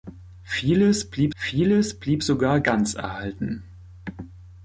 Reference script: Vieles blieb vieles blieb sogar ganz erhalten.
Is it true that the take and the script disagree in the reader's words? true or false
false